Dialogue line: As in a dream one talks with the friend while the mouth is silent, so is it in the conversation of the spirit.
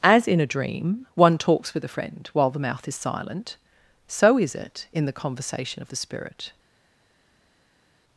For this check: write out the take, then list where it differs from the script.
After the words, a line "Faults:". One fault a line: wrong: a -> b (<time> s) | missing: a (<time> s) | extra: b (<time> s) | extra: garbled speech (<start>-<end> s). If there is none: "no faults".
As in a dream one talks with a friend while the mouth is silent, so is it in the conversation of the spirit.
Faults:
wrong: the -> a (1.8 s)